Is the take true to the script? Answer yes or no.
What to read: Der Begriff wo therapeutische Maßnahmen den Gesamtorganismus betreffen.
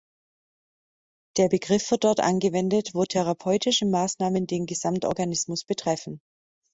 no